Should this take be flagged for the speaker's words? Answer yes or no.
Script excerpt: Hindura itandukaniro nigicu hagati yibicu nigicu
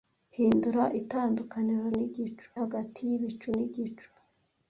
no